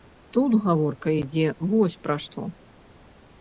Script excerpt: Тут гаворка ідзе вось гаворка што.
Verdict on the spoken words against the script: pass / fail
fail